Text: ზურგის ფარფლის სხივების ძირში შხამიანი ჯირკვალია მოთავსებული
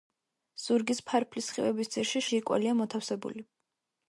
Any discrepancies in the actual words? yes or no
yes